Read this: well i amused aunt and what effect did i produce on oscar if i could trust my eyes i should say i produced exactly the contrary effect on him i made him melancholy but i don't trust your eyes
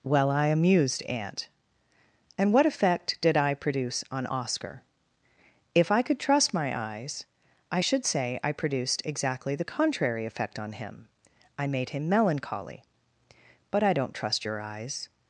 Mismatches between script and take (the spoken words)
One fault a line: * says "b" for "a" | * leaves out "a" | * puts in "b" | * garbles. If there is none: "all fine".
all fine